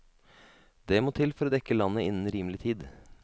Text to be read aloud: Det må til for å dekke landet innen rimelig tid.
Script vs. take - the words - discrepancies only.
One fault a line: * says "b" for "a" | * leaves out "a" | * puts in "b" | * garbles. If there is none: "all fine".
all fine